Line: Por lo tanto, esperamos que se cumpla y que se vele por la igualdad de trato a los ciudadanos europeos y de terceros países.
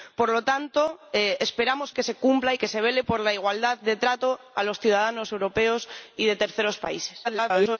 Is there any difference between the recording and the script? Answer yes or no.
yes